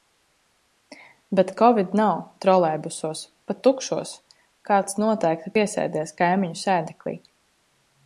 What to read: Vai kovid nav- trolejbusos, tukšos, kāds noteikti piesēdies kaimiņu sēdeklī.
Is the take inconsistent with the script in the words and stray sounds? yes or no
yes